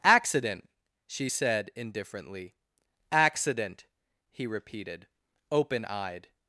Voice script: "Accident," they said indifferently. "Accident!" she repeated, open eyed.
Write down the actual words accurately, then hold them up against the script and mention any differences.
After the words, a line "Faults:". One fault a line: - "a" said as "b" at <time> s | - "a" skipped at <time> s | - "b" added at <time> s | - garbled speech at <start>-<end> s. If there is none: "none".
"Accident," she said indifferently. "Accident!" he repeated, open eyed.
Faults:
- "they" said as "she" at 1.1 s
- "she" said as "he" at 4.3 s